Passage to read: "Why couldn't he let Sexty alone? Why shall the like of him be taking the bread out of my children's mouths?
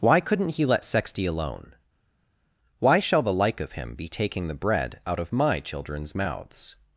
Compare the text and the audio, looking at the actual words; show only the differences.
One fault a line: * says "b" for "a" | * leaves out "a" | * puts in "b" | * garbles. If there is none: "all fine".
all fine